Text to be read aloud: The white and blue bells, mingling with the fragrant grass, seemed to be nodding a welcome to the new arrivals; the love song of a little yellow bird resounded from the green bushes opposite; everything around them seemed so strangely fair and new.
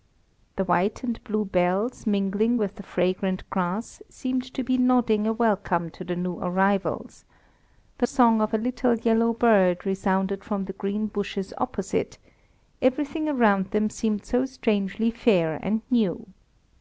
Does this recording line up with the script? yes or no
no